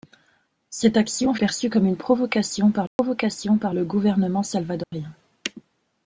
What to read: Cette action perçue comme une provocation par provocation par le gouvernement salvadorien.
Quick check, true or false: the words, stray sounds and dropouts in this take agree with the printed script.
false